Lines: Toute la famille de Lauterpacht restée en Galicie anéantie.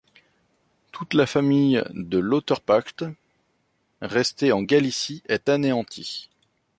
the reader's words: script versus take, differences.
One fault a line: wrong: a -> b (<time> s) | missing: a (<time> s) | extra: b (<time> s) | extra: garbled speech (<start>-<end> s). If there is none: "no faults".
extra: est (5.3 s)